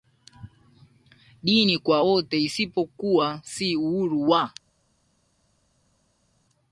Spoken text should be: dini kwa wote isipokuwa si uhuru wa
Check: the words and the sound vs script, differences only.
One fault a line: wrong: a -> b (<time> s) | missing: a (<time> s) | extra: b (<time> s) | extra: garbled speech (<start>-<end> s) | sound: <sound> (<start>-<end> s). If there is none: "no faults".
no faults